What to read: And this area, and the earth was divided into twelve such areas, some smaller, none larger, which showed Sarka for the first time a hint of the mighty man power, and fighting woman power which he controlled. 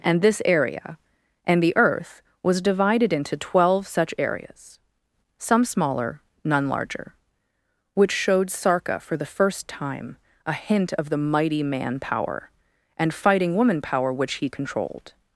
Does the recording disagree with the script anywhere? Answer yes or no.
no